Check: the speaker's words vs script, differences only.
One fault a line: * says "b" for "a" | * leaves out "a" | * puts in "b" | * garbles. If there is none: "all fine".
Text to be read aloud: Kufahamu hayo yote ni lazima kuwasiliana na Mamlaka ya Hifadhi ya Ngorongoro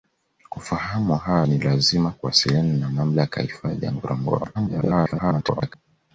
* leaves out "yote"
* garbles